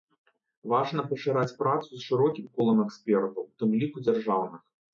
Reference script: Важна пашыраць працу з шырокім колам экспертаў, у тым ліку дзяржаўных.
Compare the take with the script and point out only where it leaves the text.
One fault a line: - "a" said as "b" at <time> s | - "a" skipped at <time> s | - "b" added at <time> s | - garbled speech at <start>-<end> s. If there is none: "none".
none